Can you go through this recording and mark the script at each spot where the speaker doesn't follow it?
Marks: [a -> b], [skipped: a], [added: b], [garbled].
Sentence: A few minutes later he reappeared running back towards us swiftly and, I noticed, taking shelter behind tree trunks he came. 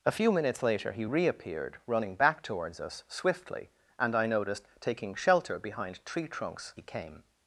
A few minutes later he reappeared running back towards us swiftly and, I noticed, taking shelter behind tree trunks he came.